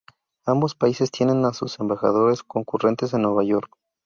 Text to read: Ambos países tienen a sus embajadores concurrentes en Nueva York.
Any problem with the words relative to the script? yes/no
no